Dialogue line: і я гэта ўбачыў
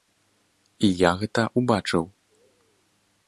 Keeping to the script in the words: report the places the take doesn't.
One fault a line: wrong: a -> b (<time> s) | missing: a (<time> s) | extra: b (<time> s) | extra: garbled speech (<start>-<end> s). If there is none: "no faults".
no faults